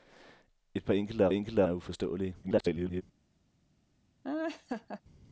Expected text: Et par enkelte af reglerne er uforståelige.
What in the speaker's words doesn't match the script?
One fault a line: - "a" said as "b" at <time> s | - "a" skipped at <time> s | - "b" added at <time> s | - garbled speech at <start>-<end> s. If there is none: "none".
- "reglerne" said as "enkelte" at 1.3 s
- garbled speech at 2.4-3.0 s